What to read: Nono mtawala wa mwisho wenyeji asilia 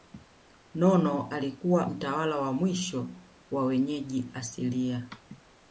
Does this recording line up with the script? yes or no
no